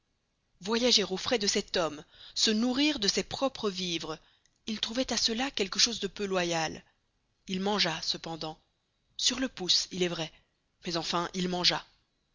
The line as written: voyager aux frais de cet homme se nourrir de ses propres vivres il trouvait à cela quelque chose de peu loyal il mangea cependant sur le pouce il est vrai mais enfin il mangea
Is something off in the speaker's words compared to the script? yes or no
no